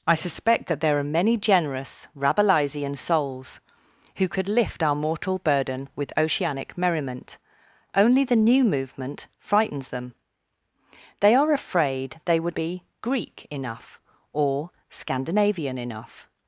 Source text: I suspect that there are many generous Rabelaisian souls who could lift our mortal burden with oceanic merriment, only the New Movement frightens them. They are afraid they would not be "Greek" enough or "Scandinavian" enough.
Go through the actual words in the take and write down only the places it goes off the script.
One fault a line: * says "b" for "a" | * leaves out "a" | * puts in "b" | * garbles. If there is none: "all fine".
* leaves out "not"